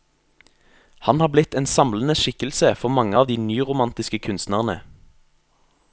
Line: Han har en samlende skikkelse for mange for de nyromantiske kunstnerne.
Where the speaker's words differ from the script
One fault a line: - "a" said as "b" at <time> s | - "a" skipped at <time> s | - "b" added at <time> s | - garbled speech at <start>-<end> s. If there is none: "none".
- "blitt" added at 1.3 s
- "for" said as "av" at 3.2 s